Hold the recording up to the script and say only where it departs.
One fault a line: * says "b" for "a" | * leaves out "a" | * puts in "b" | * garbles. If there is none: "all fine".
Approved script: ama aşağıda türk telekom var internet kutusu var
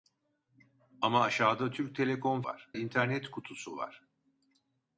all fine